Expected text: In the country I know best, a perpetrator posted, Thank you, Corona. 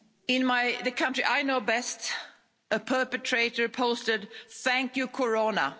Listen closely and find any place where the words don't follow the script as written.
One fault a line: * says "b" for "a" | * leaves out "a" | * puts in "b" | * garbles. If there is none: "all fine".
all fine